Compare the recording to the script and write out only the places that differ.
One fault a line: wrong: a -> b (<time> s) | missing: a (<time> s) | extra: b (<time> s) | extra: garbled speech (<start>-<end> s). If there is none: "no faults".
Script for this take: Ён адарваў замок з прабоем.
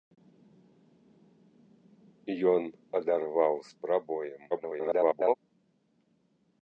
missing: замок (3.5 s)
extra: garbled speech (4.5-5.4 s)